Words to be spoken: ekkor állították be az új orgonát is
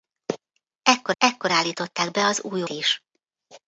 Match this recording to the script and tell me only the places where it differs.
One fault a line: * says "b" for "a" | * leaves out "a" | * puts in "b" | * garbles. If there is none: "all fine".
* puts in "ekkor"
* leaves out "orgonát"